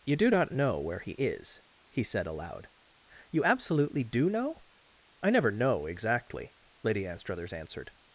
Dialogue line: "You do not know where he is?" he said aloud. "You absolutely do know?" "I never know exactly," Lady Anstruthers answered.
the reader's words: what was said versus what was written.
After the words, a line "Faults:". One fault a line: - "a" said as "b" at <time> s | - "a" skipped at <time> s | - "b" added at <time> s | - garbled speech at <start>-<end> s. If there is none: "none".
"You do not know where he is?" he said aloud. "You absolutely do know?" "I never know exactly," Lady Anstruthers answered.
Faults:
none